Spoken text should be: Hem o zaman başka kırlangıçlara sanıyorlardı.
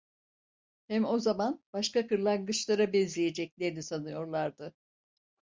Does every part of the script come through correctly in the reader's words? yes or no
no